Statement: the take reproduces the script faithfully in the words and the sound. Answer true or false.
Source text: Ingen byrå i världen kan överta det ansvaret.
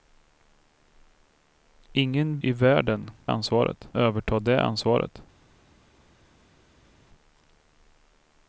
false